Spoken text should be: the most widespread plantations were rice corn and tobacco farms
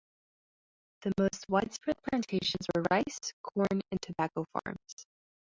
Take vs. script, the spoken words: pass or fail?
pass